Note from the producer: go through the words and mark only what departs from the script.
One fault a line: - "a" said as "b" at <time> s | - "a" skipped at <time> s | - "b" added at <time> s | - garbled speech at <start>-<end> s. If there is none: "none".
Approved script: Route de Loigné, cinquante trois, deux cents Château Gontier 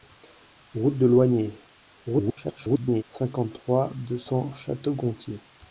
- garbled speech at 2.1-3.0 s